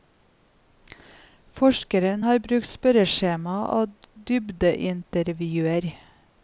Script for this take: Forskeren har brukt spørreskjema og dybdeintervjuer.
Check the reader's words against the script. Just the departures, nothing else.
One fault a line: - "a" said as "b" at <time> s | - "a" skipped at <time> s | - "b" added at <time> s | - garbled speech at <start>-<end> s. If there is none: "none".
none